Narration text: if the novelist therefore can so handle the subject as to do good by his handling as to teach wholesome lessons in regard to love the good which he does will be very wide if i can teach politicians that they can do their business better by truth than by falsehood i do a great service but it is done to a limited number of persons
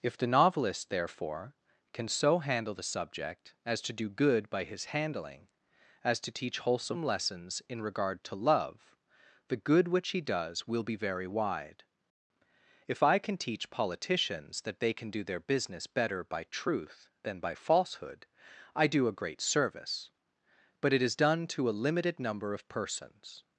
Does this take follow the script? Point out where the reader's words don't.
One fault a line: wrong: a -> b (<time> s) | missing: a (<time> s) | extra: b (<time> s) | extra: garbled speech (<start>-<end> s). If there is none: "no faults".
no faults